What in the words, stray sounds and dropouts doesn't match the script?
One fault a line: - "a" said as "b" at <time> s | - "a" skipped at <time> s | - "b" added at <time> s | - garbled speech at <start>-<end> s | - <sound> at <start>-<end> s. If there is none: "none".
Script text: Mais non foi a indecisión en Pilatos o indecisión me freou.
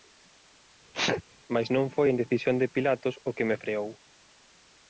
- sneeze at 0.9-1.2 s
- "en" said as "de" at 2.6 s
- "indecisión" said as "que" at 3.4 s